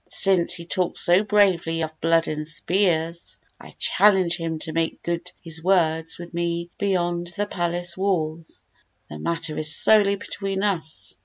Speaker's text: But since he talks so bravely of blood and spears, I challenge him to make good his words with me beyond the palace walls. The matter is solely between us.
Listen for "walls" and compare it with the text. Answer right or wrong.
right